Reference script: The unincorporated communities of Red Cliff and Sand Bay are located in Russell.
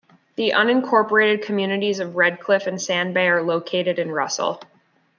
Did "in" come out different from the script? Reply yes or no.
no